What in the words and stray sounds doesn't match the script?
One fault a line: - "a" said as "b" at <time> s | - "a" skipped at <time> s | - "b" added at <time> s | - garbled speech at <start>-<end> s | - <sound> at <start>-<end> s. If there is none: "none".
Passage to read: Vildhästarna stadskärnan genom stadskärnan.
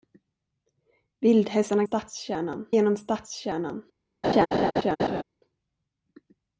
- laugh at 4.2-5.2 s